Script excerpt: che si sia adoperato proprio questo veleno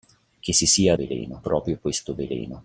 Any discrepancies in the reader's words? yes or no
yes